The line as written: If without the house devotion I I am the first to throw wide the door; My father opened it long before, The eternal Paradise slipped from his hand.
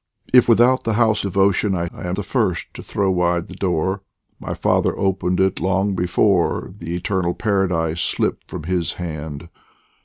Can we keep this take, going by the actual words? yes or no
yes